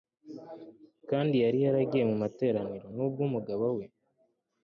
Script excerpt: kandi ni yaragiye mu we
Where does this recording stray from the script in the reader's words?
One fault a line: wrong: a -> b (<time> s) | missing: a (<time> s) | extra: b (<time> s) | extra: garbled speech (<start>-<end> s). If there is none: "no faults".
wrong: ni -> yari (1.4 s)
extra: materaniro nubwo umugabo (2.2 s)